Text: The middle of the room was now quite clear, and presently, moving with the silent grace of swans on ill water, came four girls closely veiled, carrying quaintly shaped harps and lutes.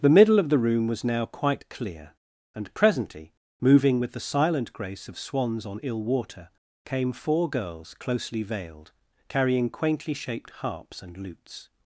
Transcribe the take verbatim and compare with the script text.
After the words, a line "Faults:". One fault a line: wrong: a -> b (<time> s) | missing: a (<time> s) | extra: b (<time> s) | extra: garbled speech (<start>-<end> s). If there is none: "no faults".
The middle of the room was now quite clear, and presently, moving with the silent grace of swans on ill water, came four girls closely veiled, carrying quaintly shaped harps and lutes.
Faults:
no faults